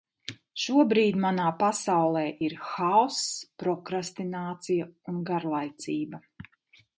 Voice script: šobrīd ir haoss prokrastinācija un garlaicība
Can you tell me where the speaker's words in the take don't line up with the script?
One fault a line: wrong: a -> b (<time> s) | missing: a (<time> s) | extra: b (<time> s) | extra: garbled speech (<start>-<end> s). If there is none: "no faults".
extra: manā pasaulē (1.2 s)